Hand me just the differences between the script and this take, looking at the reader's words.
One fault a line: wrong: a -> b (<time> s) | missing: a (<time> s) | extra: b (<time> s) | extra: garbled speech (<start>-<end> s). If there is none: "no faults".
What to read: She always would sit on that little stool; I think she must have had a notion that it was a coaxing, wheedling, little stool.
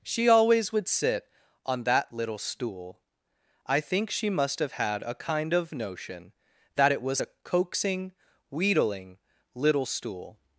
extra: kind of (5.1 s)